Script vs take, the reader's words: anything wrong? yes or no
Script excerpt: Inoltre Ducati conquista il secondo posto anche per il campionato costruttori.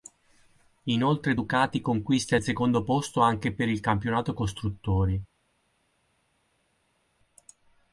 no